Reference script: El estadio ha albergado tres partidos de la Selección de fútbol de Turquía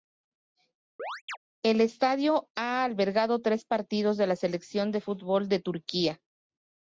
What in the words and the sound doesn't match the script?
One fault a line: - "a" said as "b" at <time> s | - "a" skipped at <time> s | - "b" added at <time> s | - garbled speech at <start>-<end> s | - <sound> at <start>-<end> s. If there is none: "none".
- chirp at 1.0-1.4 s